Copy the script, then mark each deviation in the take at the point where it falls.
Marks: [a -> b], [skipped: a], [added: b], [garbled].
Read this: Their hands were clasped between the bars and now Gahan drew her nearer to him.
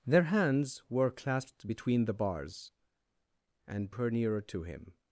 Their hands were clasped between the bars and [skipped: now Gahan drew] her nearer to him.